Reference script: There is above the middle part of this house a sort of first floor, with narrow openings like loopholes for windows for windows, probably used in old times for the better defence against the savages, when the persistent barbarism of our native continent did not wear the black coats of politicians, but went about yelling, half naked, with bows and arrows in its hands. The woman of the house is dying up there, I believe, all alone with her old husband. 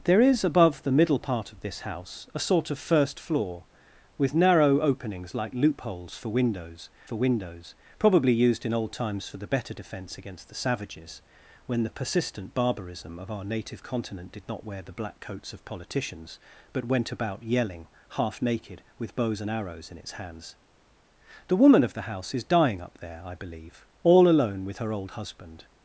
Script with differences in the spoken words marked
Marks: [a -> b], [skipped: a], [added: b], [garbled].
There is above the middle part of this house a sort of first floor, with narrow openings like loopholes for windows for windows, probably used in old times for the better defence against the savages, when the persistent barbarism of our native continent did not wear the black coats of politicians, but went about yelling, half naked, with bows and arrows in its hands. The woman of the house is dying up there, I believe, all alone with her old husband.